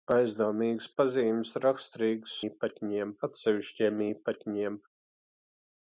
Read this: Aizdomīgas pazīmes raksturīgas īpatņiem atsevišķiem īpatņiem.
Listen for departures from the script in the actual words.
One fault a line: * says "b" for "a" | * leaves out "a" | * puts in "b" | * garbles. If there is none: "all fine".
all fine